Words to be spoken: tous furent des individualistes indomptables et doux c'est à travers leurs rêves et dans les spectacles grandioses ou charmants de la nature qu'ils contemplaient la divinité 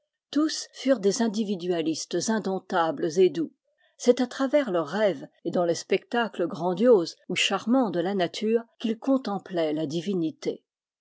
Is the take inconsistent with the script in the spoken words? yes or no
no